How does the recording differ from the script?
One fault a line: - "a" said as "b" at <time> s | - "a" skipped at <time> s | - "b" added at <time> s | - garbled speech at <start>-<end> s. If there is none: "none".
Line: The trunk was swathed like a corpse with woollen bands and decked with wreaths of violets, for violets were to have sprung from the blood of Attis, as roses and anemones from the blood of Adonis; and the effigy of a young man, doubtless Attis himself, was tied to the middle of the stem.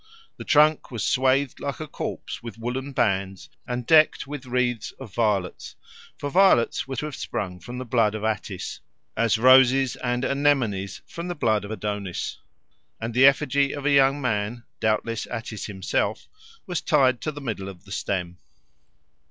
none